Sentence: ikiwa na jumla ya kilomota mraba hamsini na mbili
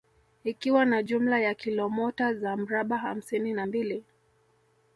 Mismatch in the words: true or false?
true